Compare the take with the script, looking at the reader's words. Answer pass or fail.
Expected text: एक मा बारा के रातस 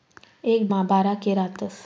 pass